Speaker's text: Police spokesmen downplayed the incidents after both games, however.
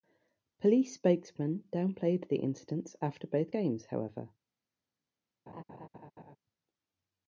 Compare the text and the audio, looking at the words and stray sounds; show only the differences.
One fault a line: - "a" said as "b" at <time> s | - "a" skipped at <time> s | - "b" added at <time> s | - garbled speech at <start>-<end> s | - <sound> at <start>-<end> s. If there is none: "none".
- laugh at 5.5-6.4 s